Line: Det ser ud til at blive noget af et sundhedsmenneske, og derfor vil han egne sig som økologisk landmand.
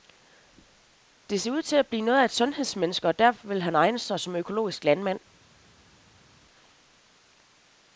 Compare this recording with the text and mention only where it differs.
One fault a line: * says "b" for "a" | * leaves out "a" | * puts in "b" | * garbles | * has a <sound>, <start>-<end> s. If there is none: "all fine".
all fine